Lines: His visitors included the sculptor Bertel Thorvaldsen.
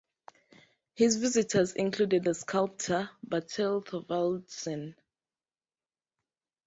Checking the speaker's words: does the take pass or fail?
pass